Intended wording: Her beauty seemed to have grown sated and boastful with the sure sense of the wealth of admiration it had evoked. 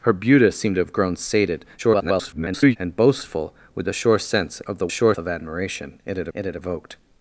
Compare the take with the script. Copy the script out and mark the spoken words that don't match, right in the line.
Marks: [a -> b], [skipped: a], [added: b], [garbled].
Her beauty seemed to have grown sated [garbled] and boastful with the sure sense of the [wealth -> sure] of admiration it had [added: it had] evoked.